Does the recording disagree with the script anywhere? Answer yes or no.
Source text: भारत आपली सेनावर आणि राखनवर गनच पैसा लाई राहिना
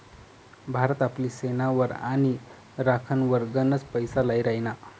no